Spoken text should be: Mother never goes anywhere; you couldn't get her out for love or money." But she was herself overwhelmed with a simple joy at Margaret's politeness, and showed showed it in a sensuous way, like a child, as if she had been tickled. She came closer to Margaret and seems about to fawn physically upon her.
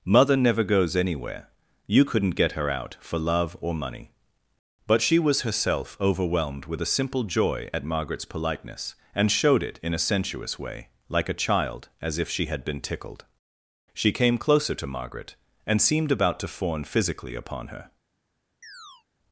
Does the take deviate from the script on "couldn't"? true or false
false